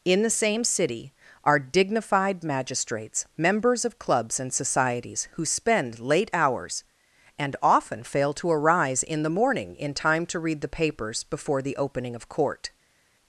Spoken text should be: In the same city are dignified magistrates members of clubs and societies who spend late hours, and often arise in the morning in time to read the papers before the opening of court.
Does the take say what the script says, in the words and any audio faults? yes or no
no